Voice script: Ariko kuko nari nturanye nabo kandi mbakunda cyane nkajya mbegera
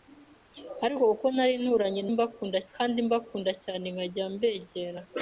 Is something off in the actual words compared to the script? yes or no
yes